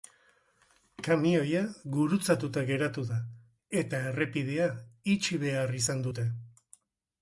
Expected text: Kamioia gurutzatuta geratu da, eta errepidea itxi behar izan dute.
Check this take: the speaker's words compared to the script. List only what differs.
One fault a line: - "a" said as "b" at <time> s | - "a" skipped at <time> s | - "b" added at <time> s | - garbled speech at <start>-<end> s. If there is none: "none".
none